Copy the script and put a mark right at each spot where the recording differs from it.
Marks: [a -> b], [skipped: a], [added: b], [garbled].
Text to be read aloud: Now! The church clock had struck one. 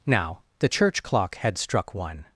Now! The church clock had struck one.